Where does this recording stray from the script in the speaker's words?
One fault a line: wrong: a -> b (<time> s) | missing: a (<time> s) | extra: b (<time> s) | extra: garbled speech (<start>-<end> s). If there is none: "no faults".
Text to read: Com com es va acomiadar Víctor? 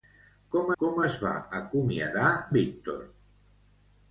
no faults